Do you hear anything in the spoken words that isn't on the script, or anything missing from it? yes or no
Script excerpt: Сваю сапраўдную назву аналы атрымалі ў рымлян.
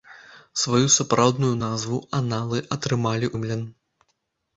yes